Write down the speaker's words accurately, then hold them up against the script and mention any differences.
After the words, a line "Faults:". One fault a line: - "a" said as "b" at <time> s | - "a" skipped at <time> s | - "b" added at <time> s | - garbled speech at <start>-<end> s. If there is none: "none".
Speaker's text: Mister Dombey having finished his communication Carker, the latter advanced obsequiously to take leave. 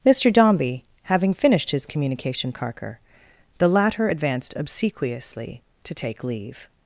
Mister Dombey having finished his communication Carker, the latter advanced obsequiously to take leave.
Faults:
none